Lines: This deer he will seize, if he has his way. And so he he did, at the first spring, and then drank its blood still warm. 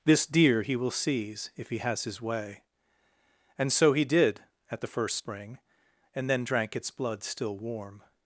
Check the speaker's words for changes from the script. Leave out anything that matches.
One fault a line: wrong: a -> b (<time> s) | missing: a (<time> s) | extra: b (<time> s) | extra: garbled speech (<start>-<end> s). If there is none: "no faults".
missing: he (4.0 s)